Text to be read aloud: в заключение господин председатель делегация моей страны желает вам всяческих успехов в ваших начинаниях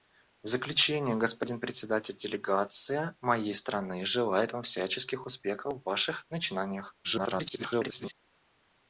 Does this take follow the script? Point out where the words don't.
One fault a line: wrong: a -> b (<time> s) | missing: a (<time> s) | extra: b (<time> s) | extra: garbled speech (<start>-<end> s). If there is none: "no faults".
extra: garbled speech (7.0-8.1 s)